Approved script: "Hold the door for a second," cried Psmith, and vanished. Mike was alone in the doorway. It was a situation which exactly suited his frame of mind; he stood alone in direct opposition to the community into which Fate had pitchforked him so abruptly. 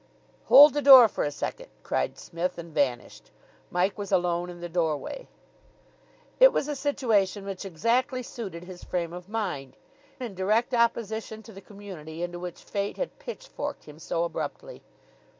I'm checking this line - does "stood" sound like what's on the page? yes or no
no